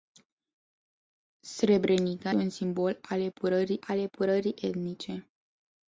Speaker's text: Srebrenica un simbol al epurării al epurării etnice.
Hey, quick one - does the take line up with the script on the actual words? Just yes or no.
yes